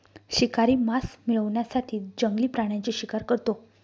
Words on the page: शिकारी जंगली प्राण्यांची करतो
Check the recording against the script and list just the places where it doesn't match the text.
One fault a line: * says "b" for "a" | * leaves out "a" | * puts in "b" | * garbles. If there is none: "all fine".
* puts in "मांस मिळवण्यासाठी"
* puts in "शिकार"